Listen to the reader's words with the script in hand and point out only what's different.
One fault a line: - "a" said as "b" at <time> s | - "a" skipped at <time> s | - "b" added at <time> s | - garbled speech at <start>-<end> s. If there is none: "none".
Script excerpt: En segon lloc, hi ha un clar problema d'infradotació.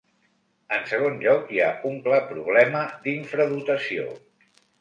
none